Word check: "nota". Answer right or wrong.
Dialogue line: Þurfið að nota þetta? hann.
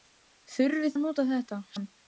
right